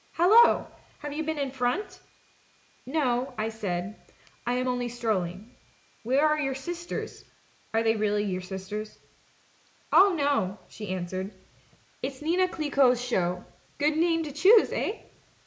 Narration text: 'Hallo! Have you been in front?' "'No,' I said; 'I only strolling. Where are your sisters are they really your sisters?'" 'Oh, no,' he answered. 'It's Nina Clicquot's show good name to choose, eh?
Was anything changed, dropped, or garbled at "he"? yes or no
yes